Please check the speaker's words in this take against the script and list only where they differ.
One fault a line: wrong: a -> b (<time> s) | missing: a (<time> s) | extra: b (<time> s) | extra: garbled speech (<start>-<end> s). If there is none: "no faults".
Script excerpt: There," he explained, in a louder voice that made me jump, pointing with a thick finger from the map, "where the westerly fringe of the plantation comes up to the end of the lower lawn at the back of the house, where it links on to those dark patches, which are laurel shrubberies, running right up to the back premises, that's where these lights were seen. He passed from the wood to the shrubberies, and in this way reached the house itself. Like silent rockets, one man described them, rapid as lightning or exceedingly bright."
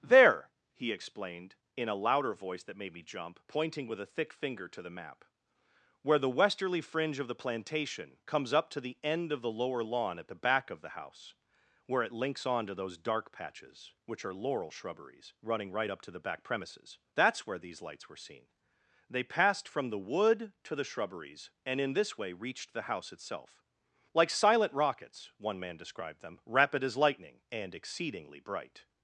wrong: from -> to (4.7 s)
wrong: He -> They (19.1 s)
wrong: or -> and (27.5 s)